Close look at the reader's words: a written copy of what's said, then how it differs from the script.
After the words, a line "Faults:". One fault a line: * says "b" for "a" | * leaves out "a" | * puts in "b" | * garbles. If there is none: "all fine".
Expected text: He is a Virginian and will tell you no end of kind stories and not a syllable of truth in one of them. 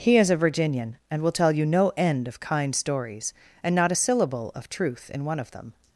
He is a Virginian and will tell you no end of kind stories and not a syllable of truth in one of them.
Faults:
all fine